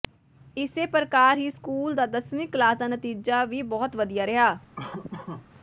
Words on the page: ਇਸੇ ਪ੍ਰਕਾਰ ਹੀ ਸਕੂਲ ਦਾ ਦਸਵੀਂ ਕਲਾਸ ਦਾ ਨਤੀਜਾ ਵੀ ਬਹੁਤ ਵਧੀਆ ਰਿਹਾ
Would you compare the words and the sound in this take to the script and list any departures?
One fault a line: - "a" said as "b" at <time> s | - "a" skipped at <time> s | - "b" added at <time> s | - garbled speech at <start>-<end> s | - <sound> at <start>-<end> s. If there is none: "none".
- laugh at 4.8-5.5 s